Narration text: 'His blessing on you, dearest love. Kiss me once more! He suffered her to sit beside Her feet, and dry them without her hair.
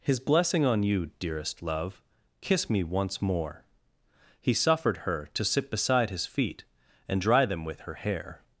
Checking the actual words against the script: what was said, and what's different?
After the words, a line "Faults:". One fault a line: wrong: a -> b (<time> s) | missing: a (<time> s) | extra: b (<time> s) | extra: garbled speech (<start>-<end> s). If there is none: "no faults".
'His blessing on you, dearest love. Kiss me once more! He suffered her to sit beside His feet, and dry them with her hair.
Faults:
wrong: Her -> His (6.1 s)
wrong: without -> with (7.6 s)